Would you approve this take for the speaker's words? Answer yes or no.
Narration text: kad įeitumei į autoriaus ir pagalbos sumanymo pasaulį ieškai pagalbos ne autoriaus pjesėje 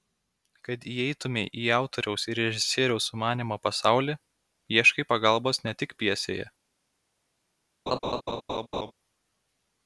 no